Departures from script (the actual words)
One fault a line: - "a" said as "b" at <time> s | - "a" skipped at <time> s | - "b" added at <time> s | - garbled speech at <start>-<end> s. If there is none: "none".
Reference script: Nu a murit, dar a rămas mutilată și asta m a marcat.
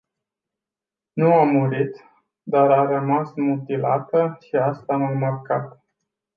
none